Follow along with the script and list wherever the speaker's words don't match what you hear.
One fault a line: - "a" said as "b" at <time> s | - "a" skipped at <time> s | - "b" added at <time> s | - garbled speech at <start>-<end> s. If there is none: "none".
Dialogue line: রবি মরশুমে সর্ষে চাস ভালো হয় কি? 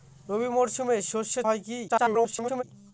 - "চাস ভালো" skipped at 1.4 s
- garbled speech at 1.9-2.6 s